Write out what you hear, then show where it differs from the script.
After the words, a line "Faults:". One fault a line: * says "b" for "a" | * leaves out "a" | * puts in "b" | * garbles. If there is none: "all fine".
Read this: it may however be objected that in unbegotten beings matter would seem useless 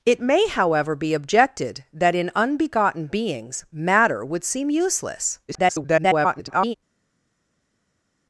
it may however be objected that in unbegotten beings matter would seem useless [garbled]
Faults:
* garbles